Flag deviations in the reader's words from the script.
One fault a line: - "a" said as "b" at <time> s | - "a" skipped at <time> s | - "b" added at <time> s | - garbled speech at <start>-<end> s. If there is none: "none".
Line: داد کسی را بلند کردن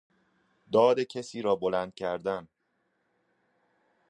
none